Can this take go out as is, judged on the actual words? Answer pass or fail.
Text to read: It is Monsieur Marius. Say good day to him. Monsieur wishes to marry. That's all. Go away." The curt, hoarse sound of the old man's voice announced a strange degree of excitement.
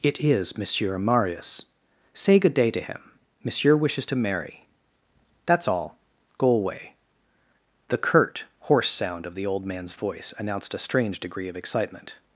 pass